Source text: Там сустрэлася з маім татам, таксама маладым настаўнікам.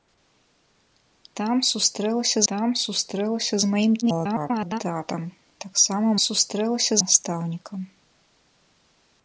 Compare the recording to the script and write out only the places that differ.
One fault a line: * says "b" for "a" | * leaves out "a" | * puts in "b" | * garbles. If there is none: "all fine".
* puts in "там сустрэлася"
* garbles
* says "сустрэлася" for "маладым"